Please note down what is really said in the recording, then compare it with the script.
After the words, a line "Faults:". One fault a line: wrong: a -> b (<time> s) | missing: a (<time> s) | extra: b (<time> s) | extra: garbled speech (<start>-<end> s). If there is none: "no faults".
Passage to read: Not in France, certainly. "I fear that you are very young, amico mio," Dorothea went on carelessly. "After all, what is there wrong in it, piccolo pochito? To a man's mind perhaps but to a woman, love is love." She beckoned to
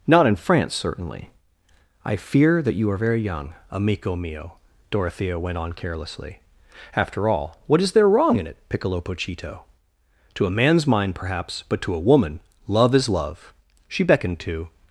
Not in France, certainly. "I fear that you are very young, amico mio," Dorothea went on carelessly. "After all, what is there wrong in it, piccolo pochito? To a man's mind perhaps but to a woman, love is love." She beckoned to
Faults:
no faults